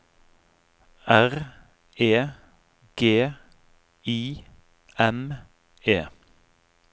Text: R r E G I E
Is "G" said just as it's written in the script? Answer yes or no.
yes